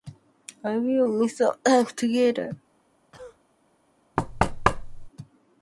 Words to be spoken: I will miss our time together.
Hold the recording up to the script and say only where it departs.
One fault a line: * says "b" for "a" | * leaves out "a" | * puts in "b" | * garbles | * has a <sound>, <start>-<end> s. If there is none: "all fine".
* has a cough, 3.1-3.4 s
* has a thud, 4.2-5.1 s